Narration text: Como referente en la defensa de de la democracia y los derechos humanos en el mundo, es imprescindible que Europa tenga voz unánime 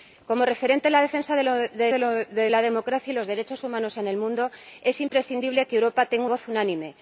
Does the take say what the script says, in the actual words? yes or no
yes